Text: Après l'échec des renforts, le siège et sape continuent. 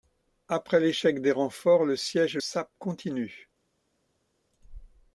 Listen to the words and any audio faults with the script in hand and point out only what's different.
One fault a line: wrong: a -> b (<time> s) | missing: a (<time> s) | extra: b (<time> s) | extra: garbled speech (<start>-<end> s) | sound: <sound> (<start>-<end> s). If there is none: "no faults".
no faults